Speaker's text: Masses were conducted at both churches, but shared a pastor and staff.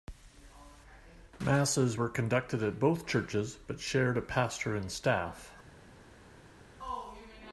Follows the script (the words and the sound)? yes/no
yes